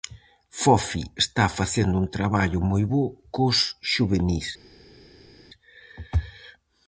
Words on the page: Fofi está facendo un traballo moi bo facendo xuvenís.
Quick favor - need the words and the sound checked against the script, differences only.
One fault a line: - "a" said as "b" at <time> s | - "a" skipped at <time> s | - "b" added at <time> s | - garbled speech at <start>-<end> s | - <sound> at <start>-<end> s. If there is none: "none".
- "facendo" said as "cos" at 3.4 s